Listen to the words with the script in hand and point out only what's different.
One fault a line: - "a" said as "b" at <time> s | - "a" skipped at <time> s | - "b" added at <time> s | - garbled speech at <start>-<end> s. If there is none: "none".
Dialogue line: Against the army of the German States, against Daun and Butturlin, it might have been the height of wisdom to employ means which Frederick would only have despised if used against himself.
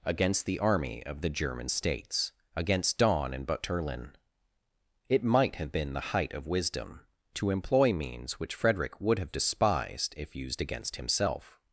- "only" skipped at 9.2 s